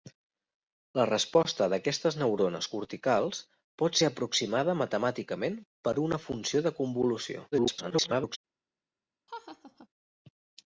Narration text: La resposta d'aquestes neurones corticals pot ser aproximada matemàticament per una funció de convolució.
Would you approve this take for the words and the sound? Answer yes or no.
no